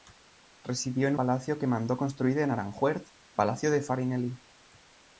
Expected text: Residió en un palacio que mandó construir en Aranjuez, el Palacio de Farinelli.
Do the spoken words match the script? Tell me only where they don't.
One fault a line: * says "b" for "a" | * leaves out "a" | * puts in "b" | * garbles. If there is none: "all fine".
* leaves out "un"
* leaves out "el"